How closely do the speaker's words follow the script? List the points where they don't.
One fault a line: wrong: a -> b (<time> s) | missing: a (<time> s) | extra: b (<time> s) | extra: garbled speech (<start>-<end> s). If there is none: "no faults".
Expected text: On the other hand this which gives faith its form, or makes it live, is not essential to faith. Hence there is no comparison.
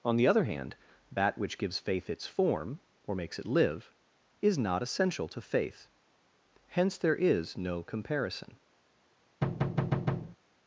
wrong: this -> that (1.1 s)